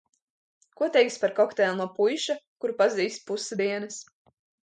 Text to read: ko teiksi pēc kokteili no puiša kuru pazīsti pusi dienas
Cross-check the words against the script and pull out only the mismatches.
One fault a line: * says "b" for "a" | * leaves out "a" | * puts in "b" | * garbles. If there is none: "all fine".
* says "par" for "pēc"